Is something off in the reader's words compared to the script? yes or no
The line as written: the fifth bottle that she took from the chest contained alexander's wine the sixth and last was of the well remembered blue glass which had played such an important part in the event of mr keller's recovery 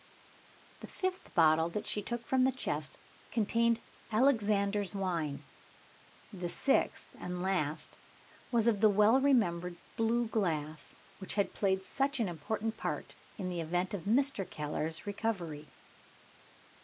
no